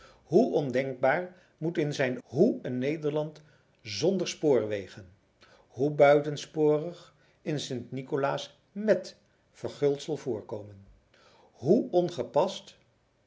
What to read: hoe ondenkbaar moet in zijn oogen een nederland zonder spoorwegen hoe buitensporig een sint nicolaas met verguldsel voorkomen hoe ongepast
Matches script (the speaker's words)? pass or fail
fail